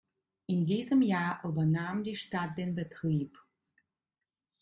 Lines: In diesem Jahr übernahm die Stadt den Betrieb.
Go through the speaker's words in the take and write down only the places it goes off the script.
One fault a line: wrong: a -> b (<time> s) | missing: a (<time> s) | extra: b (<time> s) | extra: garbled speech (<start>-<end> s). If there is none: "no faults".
no faults